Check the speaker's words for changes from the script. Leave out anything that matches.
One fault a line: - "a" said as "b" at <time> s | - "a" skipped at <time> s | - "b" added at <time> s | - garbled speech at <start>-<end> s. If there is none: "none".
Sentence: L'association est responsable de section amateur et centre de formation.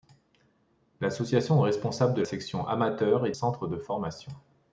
none